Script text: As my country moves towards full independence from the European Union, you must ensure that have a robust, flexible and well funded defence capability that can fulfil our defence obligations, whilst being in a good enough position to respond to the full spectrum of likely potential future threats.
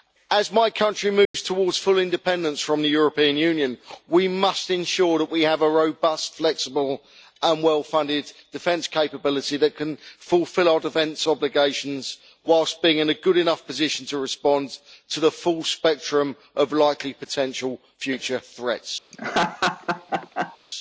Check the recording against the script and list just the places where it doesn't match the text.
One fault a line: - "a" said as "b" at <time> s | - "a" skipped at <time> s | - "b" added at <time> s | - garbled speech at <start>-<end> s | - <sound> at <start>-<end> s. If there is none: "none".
- dropout at 1.2-1.3 s
- "you" said as "we" at 4.1 s
- "we" added at 5.3 s
- laugh at 19.1-20.6 s